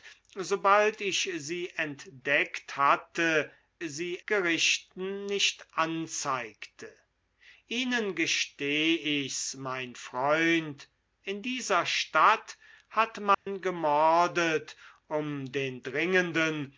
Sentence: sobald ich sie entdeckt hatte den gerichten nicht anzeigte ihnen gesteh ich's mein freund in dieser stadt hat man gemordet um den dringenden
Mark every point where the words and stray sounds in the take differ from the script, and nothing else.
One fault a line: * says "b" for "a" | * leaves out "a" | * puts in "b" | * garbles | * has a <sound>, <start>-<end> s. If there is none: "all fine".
* says "sie" for "den"
* has a dropout, 13.3-13.5 s